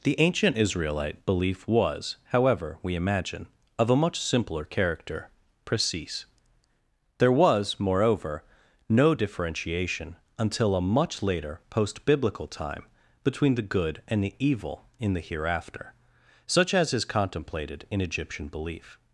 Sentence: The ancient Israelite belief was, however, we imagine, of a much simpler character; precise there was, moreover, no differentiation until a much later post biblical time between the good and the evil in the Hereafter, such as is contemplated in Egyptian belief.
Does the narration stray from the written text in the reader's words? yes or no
no